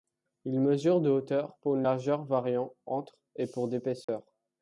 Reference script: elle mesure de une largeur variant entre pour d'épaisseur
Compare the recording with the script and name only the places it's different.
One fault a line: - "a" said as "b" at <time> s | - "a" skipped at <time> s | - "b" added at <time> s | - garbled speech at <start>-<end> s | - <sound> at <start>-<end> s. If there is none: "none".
- "elle" said as "il" at 0.5 s
- "hauteur pour" added at 1.1 s
- "et" added at 3.3 s
- dropout at 4.0-4.1 s